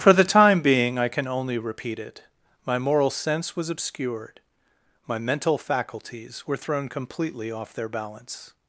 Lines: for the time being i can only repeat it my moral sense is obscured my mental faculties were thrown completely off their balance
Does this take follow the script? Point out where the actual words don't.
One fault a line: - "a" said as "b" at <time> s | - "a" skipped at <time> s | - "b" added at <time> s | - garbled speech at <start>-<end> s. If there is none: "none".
- "is" said as "was" at 3.5 s